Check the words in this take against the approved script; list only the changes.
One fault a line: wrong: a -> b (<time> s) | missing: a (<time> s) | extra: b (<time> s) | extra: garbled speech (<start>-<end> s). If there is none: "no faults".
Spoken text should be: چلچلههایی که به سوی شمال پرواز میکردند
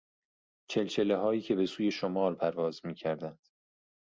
no faults